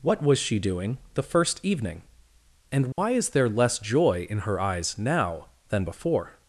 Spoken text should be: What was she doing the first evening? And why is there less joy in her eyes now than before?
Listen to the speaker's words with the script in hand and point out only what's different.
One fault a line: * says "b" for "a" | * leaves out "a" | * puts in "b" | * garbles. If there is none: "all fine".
all fine